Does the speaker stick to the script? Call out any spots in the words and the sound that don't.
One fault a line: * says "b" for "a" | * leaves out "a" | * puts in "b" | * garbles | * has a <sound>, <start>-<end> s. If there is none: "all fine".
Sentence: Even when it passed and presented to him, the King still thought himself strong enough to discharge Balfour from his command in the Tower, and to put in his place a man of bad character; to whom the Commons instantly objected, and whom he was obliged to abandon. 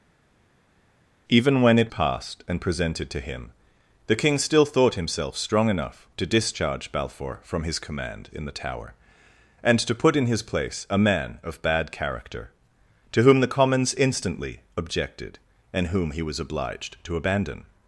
all fine